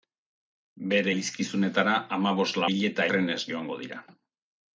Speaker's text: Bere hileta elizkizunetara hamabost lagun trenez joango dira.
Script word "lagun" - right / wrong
wrong